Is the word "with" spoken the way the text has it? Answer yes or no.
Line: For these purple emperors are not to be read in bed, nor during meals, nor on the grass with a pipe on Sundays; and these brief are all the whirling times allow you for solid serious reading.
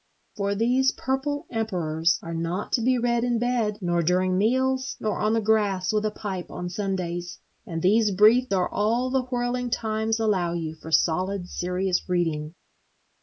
yes